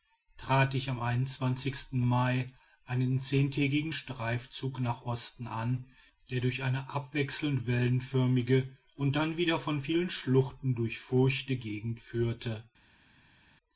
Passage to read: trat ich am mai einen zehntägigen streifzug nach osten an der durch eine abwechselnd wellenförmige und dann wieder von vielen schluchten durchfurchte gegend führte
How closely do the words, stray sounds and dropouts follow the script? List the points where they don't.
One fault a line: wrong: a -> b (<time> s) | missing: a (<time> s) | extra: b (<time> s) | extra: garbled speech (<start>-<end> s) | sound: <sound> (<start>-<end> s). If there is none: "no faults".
no faults